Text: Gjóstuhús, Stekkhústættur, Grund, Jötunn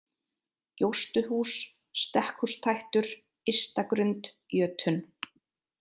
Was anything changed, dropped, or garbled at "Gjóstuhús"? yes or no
no